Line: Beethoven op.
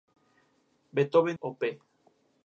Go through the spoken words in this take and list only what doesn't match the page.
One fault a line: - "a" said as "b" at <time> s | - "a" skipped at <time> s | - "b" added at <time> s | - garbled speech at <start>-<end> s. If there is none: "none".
none